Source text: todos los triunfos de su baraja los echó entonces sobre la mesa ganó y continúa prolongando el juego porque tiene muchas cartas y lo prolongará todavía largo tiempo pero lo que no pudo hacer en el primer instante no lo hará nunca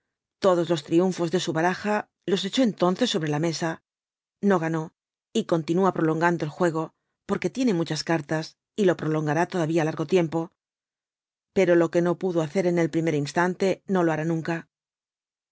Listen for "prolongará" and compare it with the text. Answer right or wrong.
right